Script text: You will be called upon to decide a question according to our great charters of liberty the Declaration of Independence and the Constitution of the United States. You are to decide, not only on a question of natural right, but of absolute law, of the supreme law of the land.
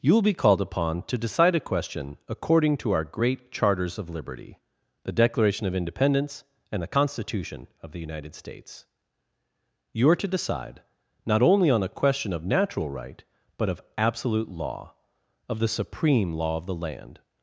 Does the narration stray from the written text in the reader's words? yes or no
no